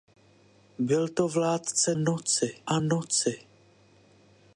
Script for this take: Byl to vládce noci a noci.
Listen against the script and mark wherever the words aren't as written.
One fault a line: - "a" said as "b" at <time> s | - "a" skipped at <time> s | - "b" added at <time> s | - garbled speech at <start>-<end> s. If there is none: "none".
none